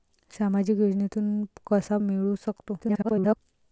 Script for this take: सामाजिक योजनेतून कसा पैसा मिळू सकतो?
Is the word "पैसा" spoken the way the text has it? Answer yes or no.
no